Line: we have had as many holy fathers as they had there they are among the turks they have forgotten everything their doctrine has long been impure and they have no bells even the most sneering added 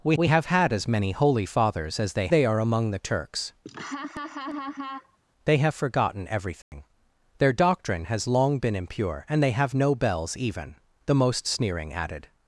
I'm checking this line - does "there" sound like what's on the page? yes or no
no